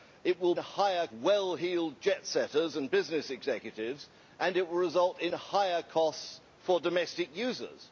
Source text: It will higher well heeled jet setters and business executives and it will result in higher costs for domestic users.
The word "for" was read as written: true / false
true